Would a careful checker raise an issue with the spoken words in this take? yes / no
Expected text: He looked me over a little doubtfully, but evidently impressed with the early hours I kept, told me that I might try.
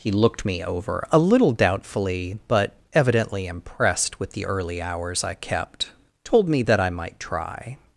no